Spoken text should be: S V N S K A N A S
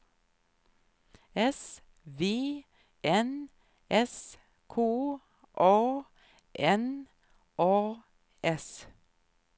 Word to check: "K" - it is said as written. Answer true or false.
true